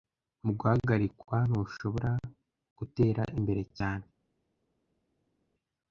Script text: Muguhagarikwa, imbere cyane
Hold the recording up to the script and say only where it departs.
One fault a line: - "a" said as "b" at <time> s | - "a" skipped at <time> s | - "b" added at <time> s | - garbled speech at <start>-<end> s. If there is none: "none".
- "ntushobora gutera" added at 1.5 s